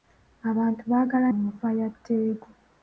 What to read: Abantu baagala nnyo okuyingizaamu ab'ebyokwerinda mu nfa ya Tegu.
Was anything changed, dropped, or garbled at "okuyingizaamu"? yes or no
yes